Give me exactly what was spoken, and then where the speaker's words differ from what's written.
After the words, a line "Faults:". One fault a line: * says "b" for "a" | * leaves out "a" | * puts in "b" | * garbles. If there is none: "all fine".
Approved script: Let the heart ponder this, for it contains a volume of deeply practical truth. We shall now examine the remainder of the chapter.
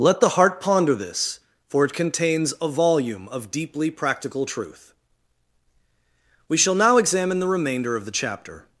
Let the heart ponder this, for it contains a volume of deeply practical truth. We shall now examine the remainder of the chapter.
Faults:
all fine